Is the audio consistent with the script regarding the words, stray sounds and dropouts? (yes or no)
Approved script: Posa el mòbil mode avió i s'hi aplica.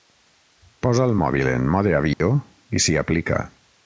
no